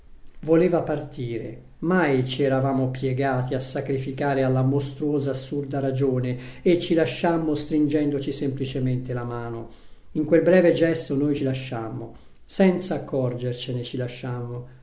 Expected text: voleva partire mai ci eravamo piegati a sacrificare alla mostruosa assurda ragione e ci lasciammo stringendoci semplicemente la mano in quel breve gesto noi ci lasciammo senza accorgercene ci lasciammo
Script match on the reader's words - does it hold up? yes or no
yes